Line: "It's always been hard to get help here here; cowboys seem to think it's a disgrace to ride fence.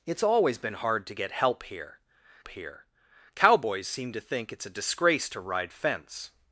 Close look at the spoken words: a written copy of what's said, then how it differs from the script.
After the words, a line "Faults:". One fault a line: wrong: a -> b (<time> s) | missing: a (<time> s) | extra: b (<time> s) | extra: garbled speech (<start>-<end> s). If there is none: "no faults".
"It's always been hard to get help here here; cowboys seem to think it's a disgrace to ride fence.
Faults:
no faults